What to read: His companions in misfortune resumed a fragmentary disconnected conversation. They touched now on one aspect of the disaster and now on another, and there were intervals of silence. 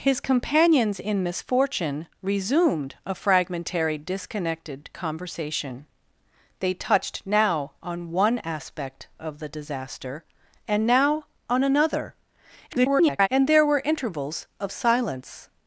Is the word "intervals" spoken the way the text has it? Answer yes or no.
yes